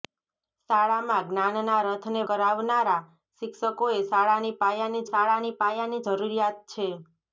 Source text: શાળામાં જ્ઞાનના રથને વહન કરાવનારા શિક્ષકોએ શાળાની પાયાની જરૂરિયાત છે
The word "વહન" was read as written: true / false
false